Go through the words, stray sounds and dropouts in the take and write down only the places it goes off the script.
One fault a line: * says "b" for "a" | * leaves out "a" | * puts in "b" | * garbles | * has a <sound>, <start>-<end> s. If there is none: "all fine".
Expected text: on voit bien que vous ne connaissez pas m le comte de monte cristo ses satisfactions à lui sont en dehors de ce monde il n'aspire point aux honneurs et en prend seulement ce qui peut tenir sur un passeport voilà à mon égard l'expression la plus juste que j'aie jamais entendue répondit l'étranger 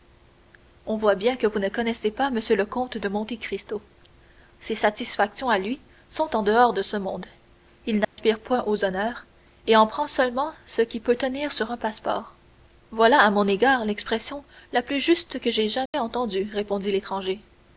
* has a dropout, 8.0-8.2 s
* has a dropout, 15.9-15.9 s